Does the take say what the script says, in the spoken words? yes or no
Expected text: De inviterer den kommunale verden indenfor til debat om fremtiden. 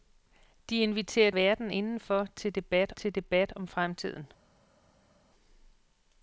no